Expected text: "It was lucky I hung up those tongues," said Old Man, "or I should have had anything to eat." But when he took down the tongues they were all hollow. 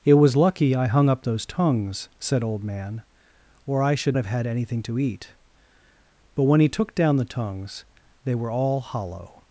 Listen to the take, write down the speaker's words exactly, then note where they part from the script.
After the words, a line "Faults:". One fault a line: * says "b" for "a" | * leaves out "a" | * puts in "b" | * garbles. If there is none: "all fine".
"It was lucky I hung up those tongues," said Old Man, "or I should have had anything to eat." But when he took down the tongues they were all hollow.
Faults:
all fine